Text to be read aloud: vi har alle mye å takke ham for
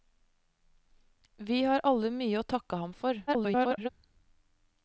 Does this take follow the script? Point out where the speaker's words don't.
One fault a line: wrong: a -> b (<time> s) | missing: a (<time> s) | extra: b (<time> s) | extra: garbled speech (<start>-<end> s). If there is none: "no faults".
extra: garbled speech (3.3-3.9 s)